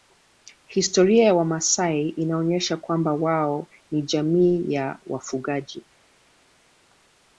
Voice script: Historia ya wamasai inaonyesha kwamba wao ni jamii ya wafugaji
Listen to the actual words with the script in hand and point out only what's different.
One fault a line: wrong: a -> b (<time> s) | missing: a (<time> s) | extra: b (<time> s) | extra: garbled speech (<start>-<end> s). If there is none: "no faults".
no faults